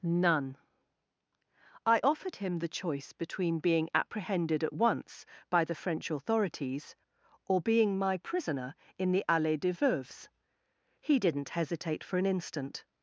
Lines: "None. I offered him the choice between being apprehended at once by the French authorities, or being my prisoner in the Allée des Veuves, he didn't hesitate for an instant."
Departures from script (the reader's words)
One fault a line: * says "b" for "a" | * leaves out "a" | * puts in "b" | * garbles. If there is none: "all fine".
all fine